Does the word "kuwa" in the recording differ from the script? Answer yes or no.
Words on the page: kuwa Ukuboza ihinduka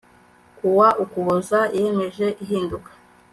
no